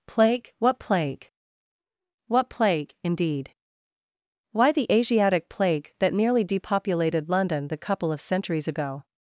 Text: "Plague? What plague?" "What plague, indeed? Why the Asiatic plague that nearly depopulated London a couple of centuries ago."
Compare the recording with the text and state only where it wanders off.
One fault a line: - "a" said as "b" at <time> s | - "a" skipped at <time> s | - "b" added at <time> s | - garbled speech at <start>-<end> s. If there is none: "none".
- "a" said as "the" at 7.7 s